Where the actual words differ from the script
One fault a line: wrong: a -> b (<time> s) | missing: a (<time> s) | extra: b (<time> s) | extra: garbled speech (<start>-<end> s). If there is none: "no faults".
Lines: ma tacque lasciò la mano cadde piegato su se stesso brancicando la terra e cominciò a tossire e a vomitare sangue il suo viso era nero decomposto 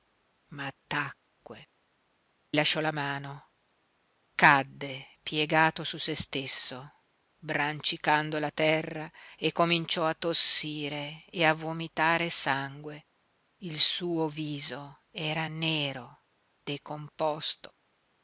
no faults